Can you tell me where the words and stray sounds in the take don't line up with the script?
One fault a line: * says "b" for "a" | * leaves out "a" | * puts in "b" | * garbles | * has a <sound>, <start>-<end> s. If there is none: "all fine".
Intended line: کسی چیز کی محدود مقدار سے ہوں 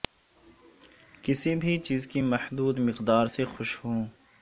* puts in "بھی"
* puts in "خوش"